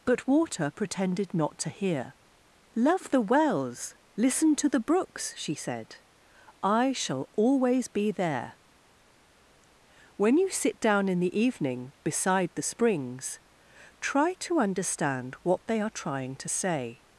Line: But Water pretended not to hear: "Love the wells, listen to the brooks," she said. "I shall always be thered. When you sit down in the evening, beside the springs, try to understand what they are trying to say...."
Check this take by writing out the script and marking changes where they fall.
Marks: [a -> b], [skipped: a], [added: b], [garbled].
But Water pretended not to hear: "Love the wells, listen to the brooks," she said. "I shall always be [thered. -> there] When you sit down in the evening, beside the springs, try to understand what they are trying to say...."